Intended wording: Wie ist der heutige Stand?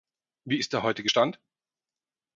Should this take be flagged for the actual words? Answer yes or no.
no